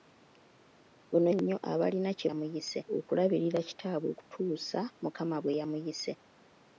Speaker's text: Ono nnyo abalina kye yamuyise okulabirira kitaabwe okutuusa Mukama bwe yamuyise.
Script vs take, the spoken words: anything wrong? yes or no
no